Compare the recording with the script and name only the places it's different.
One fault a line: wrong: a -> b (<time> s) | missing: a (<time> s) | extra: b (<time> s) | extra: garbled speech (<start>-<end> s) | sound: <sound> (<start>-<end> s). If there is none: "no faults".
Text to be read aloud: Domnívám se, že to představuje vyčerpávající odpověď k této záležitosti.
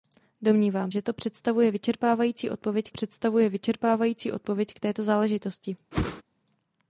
missing: se (0.9 s)
extra: představuje vyčerpávající odpověď (2.9 s)
sound: whoosh (5.9-6.2 s)